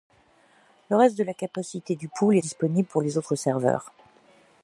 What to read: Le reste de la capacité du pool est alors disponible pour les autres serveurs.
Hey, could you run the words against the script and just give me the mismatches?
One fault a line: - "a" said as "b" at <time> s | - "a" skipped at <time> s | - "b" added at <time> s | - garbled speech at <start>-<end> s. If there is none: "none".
- "est alors" skipped at 2.4 s